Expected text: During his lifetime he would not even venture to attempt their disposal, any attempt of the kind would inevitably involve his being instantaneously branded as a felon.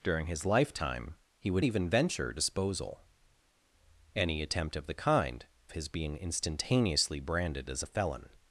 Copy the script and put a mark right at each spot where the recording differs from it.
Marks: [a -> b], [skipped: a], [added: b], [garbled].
During his lifetime he would [skipped: not] even venture [skipped: to attempt their] disposal, any attempt of the kind [skipped: would inevitably involve] his being instantaneously branded as a felon.